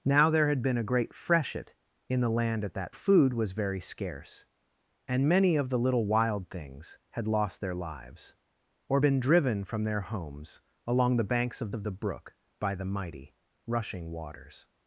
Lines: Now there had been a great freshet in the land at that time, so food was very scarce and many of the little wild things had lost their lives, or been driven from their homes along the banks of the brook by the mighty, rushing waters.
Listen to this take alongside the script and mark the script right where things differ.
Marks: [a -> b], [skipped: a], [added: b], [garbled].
Now there had been a great freshet in the land at that [skipped: time, so] food was very scarce and many of the little wild things had lost their lives, or been driven from their homes along the banks of [added: of] the brook by the mighty, rushing waters.